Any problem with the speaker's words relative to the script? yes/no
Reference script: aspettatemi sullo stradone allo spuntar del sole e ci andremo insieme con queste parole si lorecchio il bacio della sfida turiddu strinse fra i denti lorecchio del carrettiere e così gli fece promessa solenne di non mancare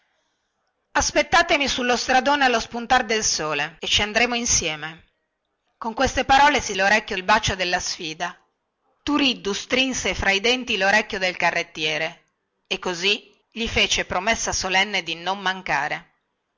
no